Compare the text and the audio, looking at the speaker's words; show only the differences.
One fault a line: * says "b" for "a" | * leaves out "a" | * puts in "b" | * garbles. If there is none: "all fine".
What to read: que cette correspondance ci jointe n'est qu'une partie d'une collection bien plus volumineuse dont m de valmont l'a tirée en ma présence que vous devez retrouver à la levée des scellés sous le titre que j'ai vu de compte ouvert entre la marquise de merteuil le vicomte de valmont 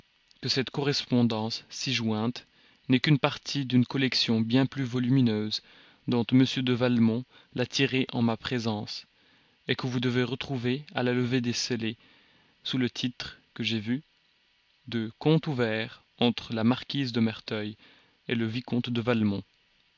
all fine